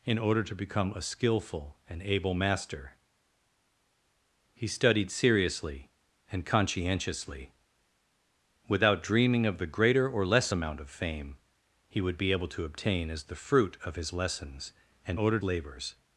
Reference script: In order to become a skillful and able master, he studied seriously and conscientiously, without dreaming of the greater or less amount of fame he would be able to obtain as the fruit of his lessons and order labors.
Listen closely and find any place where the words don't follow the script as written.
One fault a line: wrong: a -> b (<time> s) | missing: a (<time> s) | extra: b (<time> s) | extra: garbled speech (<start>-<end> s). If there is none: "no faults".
no faults